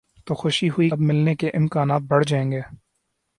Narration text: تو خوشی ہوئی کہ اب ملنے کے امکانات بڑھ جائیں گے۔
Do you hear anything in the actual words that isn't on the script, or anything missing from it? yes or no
yes